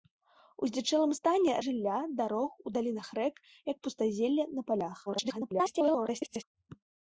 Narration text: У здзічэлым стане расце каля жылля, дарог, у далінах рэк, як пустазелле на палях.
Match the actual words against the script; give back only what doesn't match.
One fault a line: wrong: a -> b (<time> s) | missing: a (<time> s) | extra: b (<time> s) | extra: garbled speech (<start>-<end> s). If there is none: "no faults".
missing: расце каля (1.5 s)
extra: garbled speech (5.1-6.4 s)